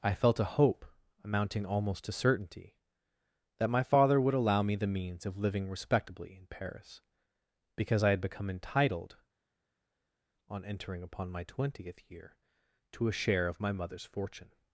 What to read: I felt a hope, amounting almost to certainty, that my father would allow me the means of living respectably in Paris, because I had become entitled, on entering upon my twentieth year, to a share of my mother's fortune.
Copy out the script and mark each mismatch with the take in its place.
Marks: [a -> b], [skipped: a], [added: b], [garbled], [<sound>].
I felt a hope, amounting almost to certainty, that my father would allow me the means of living respectably in Paris, because I had become entitled, on entering upon my twentieth year, to a share of my mother's fortune.